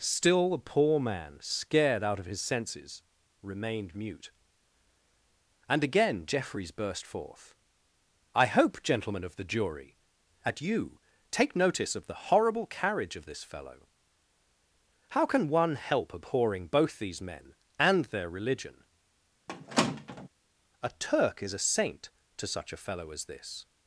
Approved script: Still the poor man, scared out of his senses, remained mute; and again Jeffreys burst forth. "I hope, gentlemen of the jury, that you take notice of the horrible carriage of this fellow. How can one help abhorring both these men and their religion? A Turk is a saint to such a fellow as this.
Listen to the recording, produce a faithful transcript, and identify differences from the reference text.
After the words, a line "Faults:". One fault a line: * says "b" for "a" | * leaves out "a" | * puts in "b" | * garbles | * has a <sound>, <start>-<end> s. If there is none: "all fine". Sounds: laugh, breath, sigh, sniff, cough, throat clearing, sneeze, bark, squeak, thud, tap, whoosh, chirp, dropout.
Still the poor man, scared out of his senses, remained mute; and again Jeffreys burst forth. "I hope, gentlemen of the jury, at you take notice of the horrible carriage of this fellow. How can one help abhorring both these men and their religion? A Turk is a saint to such a fellow as this.
Faults:
* says "at" for "that"
* has a squeak, 19.5-20.3 s